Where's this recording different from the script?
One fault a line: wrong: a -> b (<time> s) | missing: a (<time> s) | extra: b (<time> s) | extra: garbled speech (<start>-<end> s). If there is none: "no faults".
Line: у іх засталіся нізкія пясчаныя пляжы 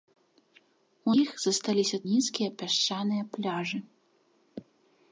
no faults